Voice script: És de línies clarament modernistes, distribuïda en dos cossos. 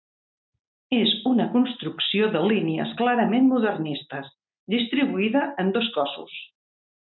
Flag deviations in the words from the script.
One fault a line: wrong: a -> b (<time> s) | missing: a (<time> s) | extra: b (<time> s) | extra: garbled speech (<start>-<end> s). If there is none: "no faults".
extra: una construcció (1.3 s)